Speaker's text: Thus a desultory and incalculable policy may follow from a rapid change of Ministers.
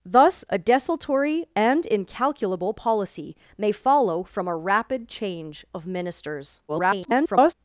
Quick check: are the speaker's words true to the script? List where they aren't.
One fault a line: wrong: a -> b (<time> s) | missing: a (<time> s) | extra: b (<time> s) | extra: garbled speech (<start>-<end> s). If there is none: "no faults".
extra: garbled speech (6.7-7.5 s)